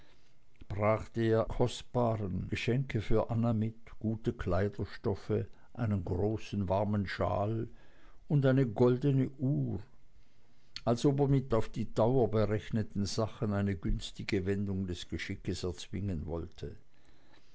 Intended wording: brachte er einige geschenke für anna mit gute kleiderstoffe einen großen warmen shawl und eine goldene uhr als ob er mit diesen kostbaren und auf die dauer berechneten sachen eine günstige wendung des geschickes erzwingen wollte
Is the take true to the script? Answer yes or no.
no